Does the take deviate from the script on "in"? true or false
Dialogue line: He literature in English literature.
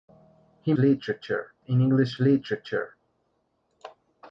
false